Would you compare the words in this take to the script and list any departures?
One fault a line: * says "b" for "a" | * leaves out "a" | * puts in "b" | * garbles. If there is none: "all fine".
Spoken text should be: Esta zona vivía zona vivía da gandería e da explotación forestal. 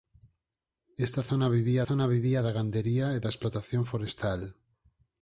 all fine